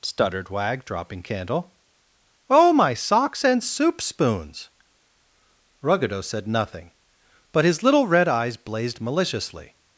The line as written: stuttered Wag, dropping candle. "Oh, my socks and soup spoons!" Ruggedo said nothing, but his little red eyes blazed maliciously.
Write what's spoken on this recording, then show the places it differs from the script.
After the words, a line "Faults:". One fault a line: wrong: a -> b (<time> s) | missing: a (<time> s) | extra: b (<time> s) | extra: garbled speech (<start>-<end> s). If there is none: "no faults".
stuttered Wag, dropping candle. "Oh, my socks and soup spoons!" Ruggedo said nothing, but his little red eyes blazed maliciously.
Faults:
no faults